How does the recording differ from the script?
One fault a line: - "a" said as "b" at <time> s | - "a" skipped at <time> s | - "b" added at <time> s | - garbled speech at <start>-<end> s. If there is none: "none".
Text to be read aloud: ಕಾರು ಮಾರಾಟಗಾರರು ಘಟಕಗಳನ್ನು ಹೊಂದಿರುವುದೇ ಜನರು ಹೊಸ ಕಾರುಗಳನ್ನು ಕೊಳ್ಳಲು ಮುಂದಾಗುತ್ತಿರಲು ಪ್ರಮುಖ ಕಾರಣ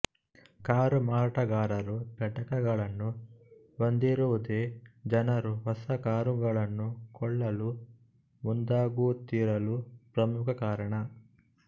none